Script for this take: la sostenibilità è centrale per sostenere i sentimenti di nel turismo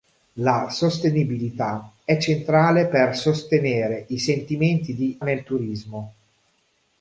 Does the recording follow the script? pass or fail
pass